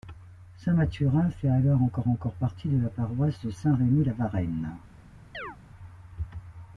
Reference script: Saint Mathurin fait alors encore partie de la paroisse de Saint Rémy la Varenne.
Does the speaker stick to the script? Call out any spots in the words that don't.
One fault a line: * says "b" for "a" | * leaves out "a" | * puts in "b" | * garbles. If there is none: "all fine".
* puts in "encore"